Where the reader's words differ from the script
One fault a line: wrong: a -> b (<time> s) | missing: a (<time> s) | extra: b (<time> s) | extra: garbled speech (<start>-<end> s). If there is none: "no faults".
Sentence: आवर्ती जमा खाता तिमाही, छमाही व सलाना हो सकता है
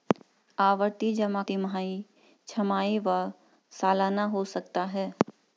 missing: खाता (1.4 s)